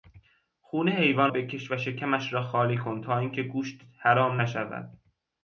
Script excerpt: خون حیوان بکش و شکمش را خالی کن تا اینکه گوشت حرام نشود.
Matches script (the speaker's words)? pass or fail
pass